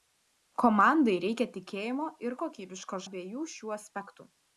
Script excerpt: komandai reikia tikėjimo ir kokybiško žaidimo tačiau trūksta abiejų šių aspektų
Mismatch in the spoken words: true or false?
true